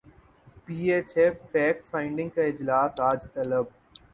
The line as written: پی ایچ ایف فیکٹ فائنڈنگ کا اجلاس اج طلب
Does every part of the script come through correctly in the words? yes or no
yes